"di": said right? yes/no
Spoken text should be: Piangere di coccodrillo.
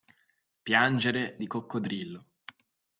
yes